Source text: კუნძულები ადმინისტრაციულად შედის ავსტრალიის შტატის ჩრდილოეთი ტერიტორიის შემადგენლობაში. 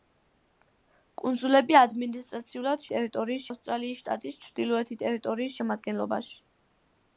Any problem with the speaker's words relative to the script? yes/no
yes